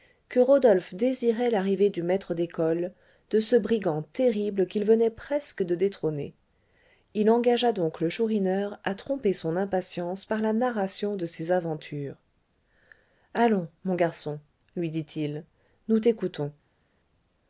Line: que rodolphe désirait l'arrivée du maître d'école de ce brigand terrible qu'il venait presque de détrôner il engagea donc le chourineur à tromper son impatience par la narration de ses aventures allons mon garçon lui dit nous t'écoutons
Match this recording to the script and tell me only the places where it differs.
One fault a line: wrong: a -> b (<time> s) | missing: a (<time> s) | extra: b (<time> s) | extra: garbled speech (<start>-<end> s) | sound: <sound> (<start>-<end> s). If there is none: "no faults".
extra: il (15.2 s)